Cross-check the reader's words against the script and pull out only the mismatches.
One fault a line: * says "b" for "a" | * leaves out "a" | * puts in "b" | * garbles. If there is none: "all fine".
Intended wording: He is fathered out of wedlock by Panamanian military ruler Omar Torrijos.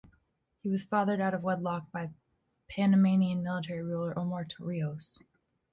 * says "was" for "is"